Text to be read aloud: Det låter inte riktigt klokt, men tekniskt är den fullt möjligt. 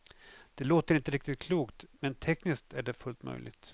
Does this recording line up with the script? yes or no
no